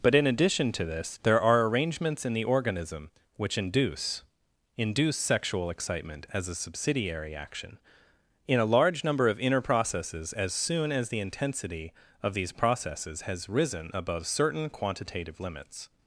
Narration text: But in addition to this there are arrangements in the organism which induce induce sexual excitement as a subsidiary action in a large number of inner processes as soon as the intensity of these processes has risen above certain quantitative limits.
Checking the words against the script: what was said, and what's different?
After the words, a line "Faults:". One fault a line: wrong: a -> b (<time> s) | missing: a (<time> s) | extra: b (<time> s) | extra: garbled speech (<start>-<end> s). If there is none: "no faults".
But in addition to this there are arrangements in the organism which induce induce sexual excitement as a subsidiary action in a large number of inner processes as soon as the intensity of these processes has risen above certain quantitative limits.
Faults:
no faults